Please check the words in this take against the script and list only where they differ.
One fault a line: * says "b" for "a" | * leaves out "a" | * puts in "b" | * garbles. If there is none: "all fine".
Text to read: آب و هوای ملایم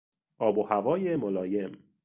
all fine